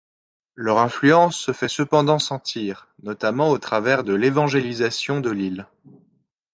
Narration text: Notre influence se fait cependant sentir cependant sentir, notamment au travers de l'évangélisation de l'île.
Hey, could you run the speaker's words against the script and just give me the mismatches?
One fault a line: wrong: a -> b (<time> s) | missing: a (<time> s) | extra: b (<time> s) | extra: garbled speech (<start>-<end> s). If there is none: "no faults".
wrong: Notre -> Leur (0.6 s)
missing: cependant sentir (2.9 s)